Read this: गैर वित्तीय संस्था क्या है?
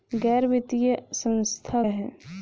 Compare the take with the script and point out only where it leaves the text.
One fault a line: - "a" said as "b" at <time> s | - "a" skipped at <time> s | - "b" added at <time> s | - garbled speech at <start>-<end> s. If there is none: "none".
- "क्या" skipped at 1.8 s